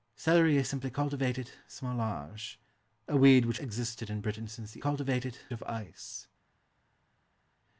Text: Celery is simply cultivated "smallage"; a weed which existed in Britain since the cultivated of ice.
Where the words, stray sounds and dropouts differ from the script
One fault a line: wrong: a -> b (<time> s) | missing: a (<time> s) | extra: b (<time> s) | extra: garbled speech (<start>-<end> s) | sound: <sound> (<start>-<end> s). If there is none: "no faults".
no faults